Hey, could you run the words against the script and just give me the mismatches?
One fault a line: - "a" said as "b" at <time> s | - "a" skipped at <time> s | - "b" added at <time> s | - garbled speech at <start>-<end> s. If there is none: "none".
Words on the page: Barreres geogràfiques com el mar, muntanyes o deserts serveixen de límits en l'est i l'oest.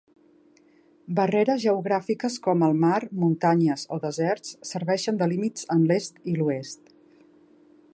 none